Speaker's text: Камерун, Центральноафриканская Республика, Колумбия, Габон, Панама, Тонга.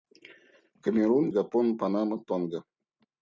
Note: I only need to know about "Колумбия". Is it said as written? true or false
false